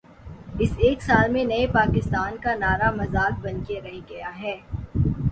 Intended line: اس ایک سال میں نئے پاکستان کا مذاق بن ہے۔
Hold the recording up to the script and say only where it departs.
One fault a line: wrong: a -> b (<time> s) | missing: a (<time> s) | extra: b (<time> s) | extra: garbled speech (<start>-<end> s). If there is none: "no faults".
extra: نعرہ (2.5 s)
extra: کے رہ گیا (3.7 s)